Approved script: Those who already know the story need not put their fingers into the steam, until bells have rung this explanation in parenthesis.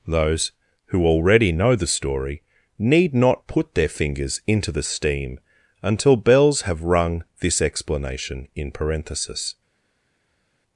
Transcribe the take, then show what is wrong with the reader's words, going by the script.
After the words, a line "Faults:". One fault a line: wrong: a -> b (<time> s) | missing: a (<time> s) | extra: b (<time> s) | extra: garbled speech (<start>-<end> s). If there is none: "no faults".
Those who already know the story need not put their fingers into the steam, until bells have rung this explanation in parenthesis.
Faults:
no faults